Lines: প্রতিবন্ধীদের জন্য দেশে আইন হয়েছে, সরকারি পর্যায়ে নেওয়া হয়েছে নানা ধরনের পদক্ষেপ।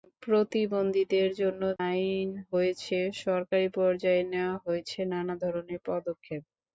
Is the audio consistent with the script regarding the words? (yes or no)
no